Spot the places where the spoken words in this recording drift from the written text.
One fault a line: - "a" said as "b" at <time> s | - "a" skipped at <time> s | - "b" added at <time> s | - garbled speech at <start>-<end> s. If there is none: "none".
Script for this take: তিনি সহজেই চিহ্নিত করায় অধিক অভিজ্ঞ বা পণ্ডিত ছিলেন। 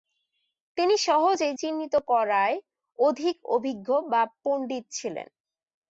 none